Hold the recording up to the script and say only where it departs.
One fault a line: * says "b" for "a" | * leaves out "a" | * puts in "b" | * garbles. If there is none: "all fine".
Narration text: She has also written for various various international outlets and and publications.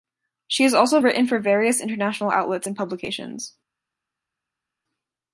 * leaves out "various"
* leaves out "and"